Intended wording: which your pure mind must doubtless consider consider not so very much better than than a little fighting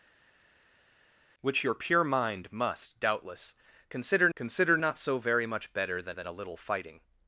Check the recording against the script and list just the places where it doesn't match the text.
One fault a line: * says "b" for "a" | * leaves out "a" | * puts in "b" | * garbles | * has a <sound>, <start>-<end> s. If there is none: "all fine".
all fine